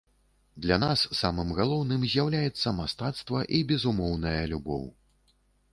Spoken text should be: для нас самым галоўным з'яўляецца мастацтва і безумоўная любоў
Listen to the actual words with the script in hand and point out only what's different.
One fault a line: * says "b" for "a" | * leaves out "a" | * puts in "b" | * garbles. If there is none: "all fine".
all fine